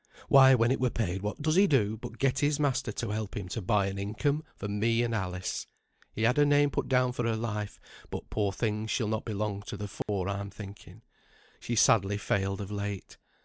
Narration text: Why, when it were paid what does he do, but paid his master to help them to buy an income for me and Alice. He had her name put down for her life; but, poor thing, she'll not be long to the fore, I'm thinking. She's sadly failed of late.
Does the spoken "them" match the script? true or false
false